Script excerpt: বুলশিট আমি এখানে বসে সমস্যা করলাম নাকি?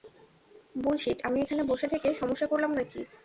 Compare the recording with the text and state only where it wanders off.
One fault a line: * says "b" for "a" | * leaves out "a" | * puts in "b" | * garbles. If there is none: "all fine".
* puts in "থেকে"